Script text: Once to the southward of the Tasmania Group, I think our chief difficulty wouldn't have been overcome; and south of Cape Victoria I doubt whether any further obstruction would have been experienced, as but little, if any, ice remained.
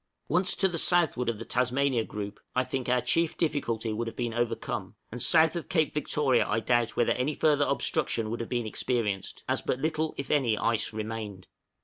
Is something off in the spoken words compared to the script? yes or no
yes